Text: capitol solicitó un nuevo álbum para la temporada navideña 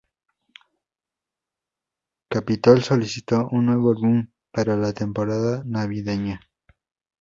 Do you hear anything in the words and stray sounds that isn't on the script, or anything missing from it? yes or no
no